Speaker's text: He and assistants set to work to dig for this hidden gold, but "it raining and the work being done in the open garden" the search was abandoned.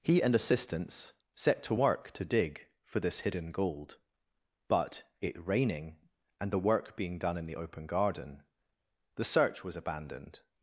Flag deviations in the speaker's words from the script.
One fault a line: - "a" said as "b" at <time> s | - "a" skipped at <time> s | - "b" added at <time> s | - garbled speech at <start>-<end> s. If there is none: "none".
none